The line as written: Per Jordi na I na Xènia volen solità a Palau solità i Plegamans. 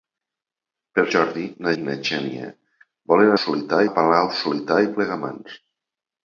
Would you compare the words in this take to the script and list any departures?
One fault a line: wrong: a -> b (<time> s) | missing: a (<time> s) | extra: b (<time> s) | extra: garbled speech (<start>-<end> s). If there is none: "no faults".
no faults